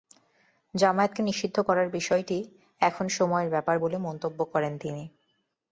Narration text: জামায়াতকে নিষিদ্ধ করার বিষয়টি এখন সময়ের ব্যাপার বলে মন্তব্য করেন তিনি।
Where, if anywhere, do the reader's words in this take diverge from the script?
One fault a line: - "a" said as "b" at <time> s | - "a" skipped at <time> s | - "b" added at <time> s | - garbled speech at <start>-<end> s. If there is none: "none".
none